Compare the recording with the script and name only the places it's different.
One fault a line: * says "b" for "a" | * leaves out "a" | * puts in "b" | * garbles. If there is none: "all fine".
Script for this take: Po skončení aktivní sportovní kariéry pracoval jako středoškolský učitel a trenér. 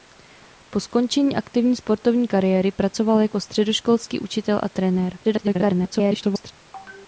* garbles